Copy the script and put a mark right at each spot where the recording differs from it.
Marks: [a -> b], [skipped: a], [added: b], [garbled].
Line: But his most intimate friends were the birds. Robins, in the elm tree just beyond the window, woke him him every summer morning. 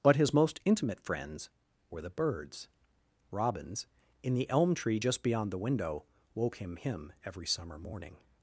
But his most intimate friends were the birds. Robins, in the elm tree just beyond the window, woke him him every summer morning.